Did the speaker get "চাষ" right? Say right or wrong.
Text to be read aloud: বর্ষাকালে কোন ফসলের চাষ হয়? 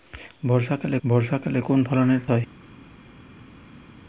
wrong